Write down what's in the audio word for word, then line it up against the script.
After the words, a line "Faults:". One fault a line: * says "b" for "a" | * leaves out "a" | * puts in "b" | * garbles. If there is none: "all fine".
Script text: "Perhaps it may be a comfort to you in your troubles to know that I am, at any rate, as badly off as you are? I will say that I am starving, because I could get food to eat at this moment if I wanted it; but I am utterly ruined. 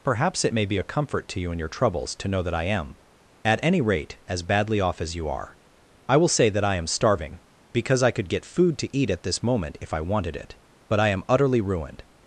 "Perhaps it may be a comfort to you in your troubles to know that I am, at any rate, as badly off as you are? I will say that I am starving, because I could get food to eat at this moment if I wanted it; but I am utterly ruined.
Faults:
all fine